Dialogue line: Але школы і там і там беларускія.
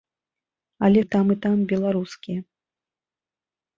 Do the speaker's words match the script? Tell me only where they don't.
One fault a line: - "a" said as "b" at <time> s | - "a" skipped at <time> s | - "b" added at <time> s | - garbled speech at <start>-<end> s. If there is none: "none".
- "школы" skipped at 1.0 s